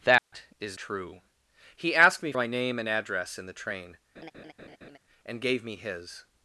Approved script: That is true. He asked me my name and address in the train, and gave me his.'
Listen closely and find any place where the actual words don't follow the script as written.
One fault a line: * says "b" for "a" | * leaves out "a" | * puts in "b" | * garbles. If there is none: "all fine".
all fine